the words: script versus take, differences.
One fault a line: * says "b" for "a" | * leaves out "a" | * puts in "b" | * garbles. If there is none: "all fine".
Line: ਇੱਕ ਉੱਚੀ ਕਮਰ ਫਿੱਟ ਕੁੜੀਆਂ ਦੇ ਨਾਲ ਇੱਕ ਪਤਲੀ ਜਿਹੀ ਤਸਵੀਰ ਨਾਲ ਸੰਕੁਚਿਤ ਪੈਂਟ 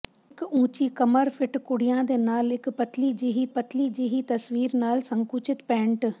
* puts in "ਪਤਲੀ ਜਿਹੀ"